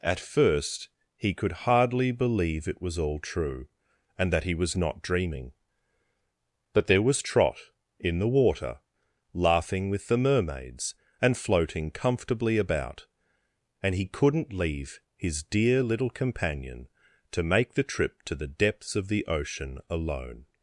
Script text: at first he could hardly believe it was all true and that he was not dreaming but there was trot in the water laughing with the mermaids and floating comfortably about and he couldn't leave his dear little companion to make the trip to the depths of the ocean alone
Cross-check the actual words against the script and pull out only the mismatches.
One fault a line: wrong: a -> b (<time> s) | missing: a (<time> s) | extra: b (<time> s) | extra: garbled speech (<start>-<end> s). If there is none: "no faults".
no faults